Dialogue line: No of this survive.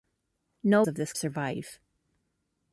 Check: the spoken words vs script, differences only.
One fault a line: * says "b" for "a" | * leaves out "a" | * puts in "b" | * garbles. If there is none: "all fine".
all fine